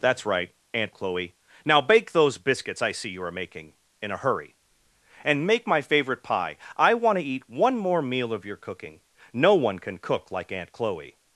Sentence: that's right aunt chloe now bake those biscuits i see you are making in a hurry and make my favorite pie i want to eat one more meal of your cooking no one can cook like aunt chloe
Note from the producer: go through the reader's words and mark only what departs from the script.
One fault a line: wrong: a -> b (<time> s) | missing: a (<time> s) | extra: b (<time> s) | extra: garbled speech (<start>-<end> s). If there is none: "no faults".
no faults